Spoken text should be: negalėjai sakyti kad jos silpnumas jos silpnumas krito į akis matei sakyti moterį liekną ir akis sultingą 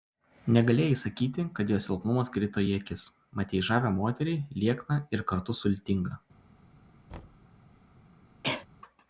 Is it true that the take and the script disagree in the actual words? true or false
true